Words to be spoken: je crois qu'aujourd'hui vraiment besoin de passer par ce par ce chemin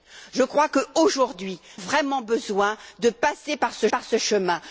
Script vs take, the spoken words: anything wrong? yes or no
no